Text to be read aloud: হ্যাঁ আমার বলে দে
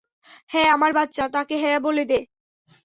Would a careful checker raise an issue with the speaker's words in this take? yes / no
yes